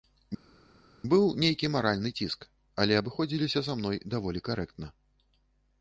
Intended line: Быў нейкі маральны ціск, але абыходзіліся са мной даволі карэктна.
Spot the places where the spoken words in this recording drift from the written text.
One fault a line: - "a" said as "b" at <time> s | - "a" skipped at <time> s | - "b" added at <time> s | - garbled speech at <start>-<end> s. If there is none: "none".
none